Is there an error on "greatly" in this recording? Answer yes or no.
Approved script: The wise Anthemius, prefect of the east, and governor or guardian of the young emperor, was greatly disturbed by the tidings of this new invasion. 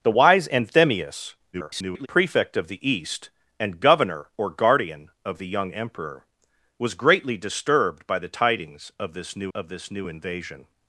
no